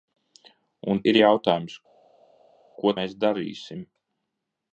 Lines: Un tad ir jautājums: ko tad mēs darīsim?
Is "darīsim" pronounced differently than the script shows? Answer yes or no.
no